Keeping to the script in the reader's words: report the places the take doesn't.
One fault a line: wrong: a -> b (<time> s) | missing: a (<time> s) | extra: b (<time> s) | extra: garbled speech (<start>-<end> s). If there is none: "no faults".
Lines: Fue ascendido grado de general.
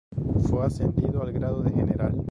extra: al (1.2 s)